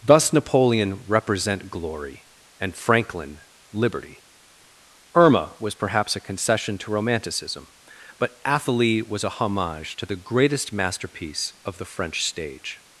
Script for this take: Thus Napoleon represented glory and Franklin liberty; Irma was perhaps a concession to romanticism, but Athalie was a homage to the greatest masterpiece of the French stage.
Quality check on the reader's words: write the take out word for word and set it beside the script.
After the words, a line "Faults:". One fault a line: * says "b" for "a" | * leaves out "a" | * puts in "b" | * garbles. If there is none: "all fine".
Thus Napoleon represent glory and Franklin liberty; Irma was perhaps a concession to romanticism, but Athalie was a homage to the greatest masterpiece of the French stage.
Faults:
* says "represent" for "represented"